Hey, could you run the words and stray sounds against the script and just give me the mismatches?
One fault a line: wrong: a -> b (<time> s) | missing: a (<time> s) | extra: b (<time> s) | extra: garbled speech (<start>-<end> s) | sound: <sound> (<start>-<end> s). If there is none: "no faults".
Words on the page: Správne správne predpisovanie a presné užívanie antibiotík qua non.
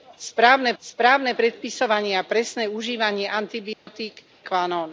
sound: dropout (3.7-3.9 s)